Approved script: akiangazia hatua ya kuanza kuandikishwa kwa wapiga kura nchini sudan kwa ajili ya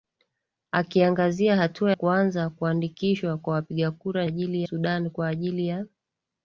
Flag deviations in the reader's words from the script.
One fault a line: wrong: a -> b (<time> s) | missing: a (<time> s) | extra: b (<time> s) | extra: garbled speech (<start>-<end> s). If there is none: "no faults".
missing: ya (1.9 s)
wrong: nchini -> ajili (4.2 s)